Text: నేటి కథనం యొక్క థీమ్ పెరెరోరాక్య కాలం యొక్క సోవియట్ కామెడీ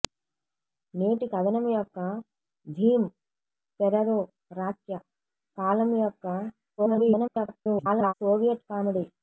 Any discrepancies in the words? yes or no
yes